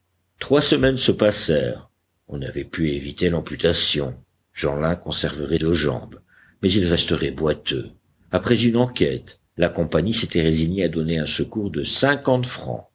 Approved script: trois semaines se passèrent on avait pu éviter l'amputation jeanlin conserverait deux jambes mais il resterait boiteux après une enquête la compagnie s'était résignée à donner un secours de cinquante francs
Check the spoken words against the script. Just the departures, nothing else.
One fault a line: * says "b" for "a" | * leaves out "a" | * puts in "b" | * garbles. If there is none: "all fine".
all fine